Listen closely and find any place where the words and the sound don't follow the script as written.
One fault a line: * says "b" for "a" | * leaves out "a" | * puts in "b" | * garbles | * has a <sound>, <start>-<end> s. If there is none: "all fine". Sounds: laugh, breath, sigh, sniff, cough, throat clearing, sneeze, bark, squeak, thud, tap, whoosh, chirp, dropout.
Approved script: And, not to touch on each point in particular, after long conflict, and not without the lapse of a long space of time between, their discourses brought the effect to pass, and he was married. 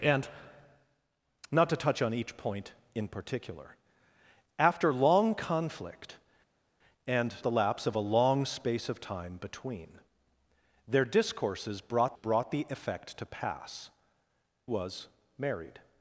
* leaves out "not without"
* puts in "brought"
* leaves out "and he"